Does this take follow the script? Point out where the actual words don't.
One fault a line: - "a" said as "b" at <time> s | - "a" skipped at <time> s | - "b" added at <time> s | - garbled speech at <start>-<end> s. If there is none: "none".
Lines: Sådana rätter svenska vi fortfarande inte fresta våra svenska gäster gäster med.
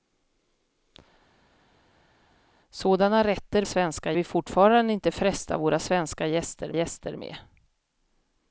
none